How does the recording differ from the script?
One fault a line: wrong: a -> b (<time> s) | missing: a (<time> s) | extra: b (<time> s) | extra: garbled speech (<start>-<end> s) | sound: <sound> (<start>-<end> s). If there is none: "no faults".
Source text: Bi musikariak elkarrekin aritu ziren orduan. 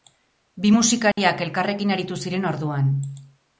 sound: dropout (1.1-1.2 s)